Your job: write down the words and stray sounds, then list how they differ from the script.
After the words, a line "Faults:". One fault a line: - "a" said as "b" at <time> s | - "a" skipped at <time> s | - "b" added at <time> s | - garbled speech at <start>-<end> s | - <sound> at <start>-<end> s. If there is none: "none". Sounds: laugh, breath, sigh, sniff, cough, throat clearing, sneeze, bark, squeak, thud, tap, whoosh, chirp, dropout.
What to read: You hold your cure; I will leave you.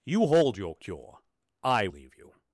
You hold your cure; I leave you.
Faults:
- "will" skipped at 1.9 s